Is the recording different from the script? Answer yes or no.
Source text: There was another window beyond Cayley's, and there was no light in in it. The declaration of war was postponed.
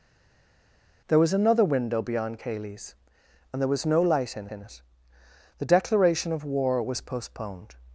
no